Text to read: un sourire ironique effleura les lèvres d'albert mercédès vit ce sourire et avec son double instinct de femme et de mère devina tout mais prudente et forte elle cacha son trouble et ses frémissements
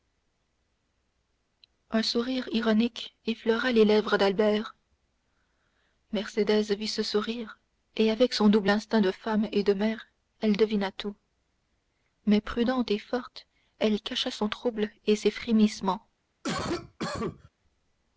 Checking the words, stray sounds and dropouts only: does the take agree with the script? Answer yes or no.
no